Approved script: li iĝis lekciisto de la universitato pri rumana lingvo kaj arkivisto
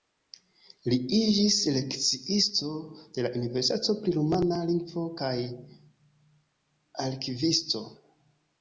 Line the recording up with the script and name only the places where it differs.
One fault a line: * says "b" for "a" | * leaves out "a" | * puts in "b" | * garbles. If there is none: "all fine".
all fine